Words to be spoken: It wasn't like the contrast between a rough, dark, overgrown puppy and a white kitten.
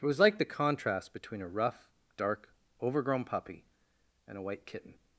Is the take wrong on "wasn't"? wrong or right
wrong